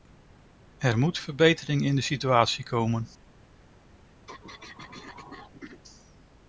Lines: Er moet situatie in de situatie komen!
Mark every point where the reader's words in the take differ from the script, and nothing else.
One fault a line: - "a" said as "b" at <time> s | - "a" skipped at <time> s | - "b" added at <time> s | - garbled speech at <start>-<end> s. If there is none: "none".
- "situatie" said as "verbetering" at 1.2 s